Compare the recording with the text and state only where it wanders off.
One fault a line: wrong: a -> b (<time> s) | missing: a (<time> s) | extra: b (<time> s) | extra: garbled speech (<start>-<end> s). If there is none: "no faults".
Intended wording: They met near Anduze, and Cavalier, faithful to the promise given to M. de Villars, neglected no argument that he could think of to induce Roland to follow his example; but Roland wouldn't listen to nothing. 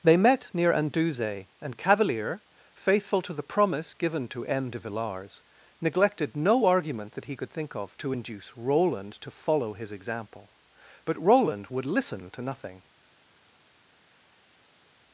wrong: wouldn't -> would (11.7 s)